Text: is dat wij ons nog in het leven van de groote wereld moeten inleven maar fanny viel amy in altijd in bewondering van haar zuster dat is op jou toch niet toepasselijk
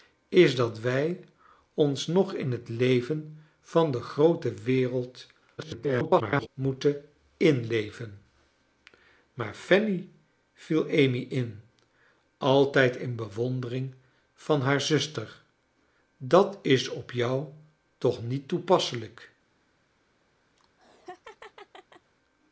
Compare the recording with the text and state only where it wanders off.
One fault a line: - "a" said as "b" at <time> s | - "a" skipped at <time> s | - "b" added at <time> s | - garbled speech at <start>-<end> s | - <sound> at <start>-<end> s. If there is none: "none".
- garbled speech at 5.6-6.5 s
- laugh at 20.6-22.1 s